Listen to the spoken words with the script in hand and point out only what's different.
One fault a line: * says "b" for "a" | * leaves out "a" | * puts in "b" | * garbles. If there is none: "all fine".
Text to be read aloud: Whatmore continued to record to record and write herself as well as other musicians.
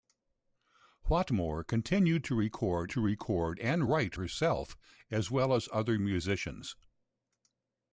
all fine